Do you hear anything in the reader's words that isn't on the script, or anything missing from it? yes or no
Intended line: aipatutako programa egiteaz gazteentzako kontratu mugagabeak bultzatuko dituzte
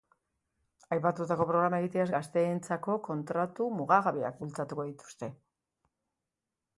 no